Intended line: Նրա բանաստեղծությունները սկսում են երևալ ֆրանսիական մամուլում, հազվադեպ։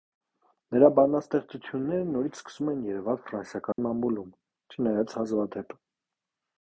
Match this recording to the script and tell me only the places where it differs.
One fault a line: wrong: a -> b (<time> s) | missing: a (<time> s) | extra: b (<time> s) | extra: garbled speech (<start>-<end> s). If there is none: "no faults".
extra: նորից (2.1 s)
extra: չնայած (4.8 s)